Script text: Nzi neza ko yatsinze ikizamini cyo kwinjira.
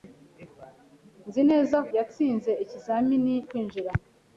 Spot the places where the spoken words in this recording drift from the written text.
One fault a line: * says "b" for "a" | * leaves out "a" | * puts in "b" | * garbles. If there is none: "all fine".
* leaves out "ko"
* leaves out "cyo"